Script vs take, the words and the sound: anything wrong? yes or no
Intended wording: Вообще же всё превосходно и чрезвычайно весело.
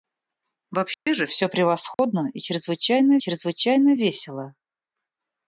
yes